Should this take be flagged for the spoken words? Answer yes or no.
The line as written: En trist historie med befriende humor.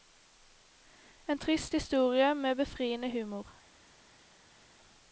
no